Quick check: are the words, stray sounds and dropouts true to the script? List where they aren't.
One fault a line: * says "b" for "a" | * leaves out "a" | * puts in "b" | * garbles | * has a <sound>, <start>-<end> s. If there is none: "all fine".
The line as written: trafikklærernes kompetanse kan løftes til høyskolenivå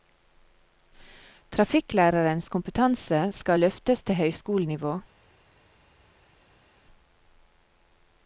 * says "skal" for "kan"